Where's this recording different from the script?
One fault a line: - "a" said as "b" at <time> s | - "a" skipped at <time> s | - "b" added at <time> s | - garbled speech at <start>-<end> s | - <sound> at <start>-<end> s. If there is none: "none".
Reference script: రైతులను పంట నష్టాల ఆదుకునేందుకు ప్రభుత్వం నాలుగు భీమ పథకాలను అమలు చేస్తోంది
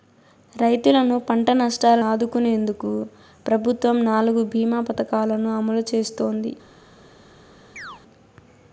- chirp at 7.8-8.0 s